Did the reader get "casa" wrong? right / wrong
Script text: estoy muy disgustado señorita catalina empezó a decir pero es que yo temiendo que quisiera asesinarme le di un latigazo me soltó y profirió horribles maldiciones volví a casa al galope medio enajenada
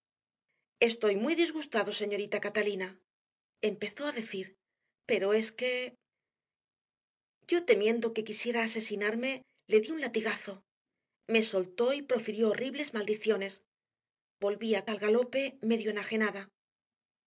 wrong